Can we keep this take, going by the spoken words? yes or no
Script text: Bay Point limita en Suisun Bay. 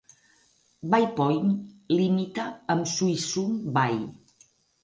no